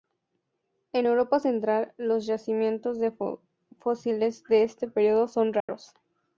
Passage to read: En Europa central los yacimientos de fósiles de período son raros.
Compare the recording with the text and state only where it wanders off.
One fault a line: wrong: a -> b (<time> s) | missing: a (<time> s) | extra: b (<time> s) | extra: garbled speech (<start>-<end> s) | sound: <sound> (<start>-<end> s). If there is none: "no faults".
extra: este (4.6 s)
sound: dropout (5.6-5.7 s)